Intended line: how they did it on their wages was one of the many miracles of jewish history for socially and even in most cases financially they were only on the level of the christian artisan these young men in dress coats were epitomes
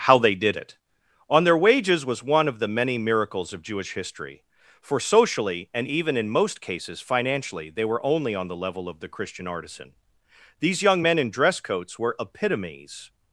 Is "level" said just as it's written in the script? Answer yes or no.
yes